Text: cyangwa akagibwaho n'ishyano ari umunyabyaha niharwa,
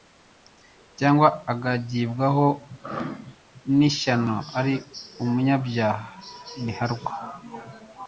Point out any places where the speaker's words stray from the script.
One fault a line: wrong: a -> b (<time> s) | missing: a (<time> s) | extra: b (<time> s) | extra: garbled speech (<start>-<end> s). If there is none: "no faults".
no faults